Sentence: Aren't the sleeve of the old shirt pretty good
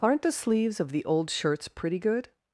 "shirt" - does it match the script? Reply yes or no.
no